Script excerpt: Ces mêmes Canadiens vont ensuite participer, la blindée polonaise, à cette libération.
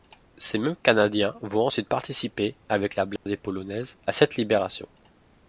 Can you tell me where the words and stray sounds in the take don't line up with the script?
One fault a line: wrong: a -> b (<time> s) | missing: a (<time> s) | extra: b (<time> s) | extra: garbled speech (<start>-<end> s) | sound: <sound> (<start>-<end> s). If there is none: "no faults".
extra: avec (2.7 s)
sound: dropout (3.2-3.3 s)